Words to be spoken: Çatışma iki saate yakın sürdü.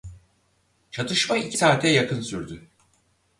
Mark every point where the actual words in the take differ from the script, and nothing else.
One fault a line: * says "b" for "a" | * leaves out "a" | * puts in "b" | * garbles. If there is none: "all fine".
all fine